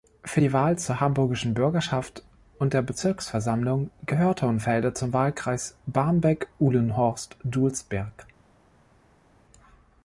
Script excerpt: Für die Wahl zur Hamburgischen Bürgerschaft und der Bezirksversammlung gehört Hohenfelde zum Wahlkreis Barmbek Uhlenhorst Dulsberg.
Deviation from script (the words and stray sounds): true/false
false